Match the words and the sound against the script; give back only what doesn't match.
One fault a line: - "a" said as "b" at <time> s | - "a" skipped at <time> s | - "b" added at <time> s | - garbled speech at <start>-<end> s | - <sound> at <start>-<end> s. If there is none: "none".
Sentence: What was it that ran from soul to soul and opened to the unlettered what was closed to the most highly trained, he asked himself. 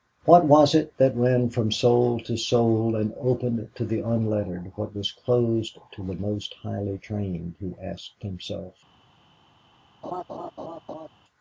- laugh at 10.0-11.1 s